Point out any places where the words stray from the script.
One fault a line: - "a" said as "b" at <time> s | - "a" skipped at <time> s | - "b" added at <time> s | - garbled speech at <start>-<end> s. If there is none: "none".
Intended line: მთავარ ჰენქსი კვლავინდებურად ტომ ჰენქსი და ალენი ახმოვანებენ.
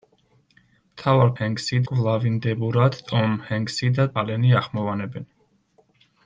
none